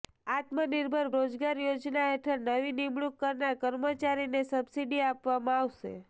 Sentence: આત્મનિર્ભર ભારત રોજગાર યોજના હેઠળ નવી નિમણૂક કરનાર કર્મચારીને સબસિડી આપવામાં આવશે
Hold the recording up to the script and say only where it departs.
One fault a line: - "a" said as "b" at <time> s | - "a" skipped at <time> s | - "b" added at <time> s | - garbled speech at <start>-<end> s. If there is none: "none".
- "ભારત" skipped at 1.1 s